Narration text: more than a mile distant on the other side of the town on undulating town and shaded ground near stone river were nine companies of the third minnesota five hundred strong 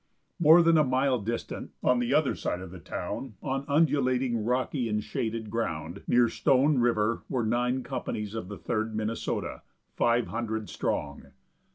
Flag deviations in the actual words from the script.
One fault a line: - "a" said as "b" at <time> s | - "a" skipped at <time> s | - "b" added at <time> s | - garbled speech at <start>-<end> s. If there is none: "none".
- "town" said as "rocky" at 4.5 s